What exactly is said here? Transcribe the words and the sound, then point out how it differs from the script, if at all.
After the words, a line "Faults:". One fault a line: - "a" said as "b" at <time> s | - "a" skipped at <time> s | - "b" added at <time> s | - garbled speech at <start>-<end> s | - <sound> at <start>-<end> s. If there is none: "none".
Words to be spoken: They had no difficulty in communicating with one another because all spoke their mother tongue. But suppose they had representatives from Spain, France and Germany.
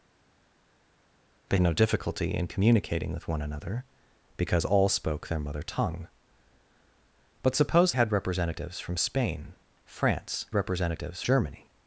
They no difficulty in communicating with one another because all spoke their mother tongue. But suppose had representatives from Spain, France representatives Germany.
Faults:
- "had" skipped at 1.6 s
- "they" skipped at 7.9 s
- "and" said as "representatives" at 10.5 s